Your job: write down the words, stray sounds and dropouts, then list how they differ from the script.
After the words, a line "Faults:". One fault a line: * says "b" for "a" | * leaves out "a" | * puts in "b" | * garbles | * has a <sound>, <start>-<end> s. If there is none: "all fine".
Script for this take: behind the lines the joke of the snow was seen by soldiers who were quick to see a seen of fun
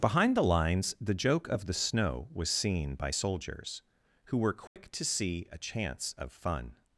behind the lines the joke of the snow was seen by soldiers who were quick to see a chance of fun
Faults:
* has a dropout, 4.7-4.8 s
* says "chance" for "seen"